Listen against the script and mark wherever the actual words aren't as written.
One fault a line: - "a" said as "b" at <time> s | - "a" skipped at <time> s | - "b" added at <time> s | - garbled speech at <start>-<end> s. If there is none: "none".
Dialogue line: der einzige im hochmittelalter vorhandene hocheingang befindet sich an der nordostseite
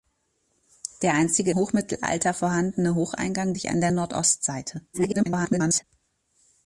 - "im" skipped at 1.5 s
- "befindet" skipped at 3.5 s
- garbled speech at 4.9-5.8 s